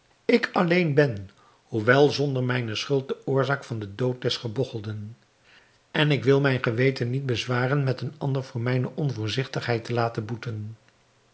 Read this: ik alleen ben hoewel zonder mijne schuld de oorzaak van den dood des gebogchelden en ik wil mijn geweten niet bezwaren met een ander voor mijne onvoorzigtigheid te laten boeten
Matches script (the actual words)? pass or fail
pass